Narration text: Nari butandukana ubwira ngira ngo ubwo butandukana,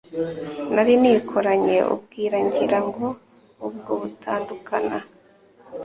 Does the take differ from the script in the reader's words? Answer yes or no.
yes